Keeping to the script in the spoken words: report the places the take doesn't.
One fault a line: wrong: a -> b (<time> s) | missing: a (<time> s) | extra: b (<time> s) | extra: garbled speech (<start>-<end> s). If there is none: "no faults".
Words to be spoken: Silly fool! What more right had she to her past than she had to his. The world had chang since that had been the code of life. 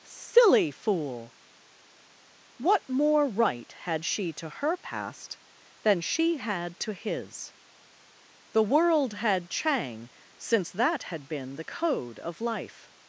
no faults